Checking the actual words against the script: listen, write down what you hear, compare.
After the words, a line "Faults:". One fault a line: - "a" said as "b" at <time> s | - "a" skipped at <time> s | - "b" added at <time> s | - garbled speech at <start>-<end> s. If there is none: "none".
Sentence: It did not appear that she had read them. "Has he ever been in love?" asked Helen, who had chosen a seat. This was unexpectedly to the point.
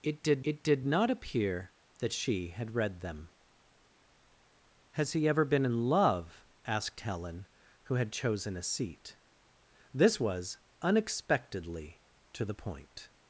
It did it did not appear that she had read them. "Has he ever been in love?" asked Helen, who had chosen a seat. This was unexpectedly to the point.
Faults:
- "it did" added at 0.4 s